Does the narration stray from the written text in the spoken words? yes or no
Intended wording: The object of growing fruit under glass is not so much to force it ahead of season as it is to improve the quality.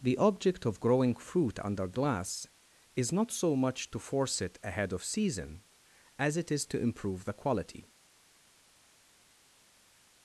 no